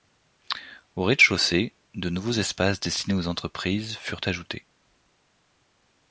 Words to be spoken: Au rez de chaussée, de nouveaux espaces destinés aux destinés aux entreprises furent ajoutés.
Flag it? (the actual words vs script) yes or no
yes